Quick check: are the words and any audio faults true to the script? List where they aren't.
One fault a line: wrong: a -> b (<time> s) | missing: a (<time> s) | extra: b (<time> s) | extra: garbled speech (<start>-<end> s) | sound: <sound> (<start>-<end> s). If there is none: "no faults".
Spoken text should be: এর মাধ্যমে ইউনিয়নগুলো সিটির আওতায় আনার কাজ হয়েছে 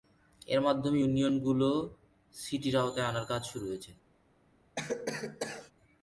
extra: শুরু (3.5 s)
sound: cough (4.8-5.7 s)